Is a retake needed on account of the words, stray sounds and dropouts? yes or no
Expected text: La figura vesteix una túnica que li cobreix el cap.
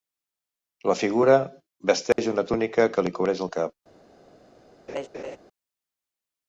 yes